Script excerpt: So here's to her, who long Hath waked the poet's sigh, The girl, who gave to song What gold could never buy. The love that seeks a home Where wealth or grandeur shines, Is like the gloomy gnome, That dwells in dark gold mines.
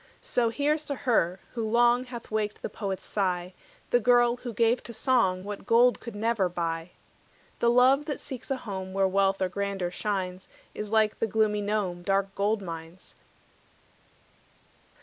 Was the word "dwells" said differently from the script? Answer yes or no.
yes